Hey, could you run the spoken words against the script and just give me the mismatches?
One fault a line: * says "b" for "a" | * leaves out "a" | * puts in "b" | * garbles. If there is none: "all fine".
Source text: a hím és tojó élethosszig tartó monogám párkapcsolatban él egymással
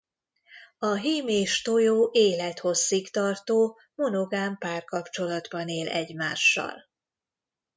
all fine